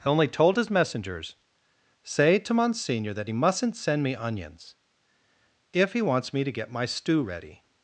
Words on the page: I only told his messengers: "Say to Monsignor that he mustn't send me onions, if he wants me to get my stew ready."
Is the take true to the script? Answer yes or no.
yes